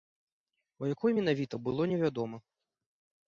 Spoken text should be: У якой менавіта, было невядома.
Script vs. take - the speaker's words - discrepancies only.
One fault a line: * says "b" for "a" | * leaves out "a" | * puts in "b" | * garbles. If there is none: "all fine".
all fine